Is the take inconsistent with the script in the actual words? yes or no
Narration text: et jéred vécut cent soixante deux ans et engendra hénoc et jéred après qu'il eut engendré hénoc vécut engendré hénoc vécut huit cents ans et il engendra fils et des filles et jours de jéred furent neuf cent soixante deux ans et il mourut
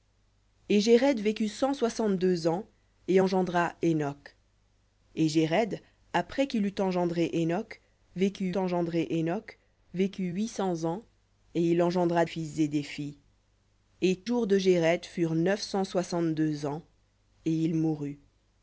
no